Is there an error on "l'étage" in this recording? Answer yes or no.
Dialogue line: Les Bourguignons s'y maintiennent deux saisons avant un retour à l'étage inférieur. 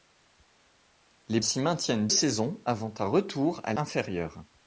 yes